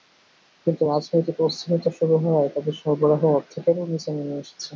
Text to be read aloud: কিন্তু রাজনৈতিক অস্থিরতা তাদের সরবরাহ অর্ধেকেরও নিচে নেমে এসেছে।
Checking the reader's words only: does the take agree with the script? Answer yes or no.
no